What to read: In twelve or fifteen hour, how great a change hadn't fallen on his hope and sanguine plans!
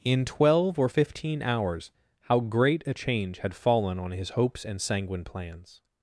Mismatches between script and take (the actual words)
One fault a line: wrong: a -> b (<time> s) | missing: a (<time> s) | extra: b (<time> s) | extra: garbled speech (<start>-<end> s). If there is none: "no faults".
wrong: hour -> hours (1.4 s)
wrong: hadn't -> had (3.4 s)
wrong: hope -> hopes (4.3 s)